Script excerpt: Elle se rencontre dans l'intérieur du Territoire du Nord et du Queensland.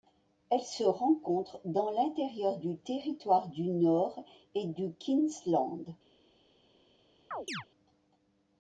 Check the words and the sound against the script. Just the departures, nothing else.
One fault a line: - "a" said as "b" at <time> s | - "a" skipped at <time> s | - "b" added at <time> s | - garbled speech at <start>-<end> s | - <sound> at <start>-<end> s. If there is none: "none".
- chirp at 7.3-7.6 s